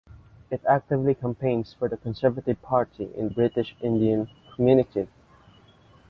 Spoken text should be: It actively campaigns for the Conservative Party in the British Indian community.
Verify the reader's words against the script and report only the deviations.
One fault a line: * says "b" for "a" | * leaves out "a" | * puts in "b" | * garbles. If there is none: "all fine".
* leaves out "the"